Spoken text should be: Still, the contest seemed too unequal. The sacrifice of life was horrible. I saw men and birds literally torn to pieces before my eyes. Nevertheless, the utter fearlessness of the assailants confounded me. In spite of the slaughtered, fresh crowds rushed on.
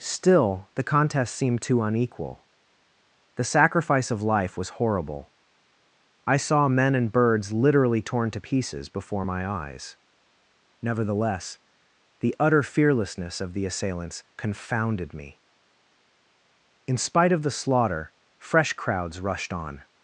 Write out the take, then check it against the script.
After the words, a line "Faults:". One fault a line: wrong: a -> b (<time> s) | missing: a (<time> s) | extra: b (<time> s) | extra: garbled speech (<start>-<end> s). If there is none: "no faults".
Still, the contest seemed too unequal. The sacrifice of life was horrible. I saw men and birds literally torn to pieces before my eyes. Nevertheless, the utter fearlessness of the assailants confounded me. In spite of the slaughter, fresh crowds rushed on.
Faults:
wrong: slaughtered -> slaughter (17.5 s)